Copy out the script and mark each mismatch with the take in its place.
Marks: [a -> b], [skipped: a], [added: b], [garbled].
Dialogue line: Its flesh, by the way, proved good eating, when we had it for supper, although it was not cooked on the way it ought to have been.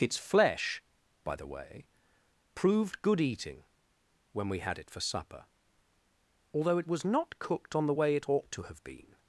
Its flesh, by the way, proved good eating, when we had it for supper, although it was not cooked on the way it ought to have been.